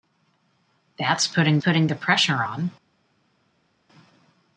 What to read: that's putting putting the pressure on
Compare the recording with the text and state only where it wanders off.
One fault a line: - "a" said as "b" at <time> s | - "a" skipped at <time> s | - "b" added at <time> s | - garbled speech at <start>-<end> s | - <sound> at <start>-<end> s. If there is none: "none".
none